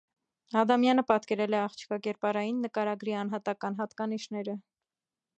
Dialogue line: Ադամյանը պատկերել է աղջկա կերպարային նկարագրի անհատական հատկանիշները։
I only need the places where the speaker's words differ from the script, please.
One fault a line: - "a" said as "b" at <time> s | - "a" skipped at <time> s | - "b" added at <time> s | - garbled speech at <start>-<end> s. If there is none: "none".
none